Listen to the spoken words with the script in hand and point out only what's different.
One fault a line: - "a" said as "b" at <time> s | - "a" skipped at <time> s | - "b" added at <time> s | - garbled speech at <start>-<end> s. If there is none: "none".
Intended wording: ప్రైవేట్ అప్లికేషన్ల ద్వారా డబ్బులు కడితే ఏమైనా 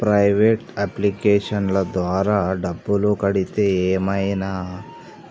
none